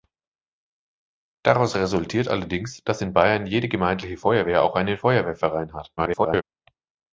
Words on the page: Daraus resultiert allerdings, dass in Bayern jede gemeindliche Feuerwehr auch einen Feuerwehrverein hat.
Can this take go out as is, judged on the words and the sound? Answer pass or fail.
fail